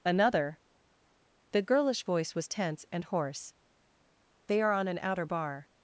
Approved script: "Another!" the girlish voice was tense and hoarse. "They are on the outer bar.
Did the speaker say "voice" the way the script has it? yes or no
yes